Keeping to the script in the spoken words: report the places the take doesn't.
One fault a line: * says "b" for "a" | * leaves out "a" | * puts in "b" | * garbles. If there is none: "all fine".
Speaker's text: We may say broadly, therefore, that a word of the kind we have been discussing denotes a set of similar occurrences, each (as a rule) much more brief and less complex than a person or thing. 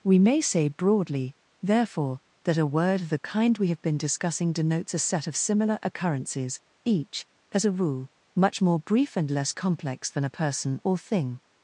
all fine